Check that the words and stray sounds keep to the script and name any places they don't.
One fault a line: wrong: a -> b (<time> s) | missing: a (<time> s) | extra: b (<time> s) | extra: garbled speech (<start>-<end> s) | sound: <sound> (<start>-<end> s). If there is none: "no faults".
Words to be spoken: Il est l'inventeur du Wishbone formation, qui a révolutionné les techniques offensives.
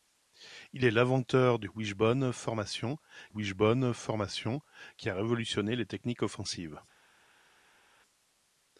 extra: Wishbone formation (3.3 s)